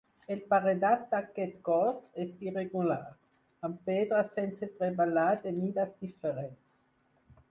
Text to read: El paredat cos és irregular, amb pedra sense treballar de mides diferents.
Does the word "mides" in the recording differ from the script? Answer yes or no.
no